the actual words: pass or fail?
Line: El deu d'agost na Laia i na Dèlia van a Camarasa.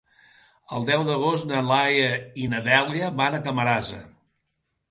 pass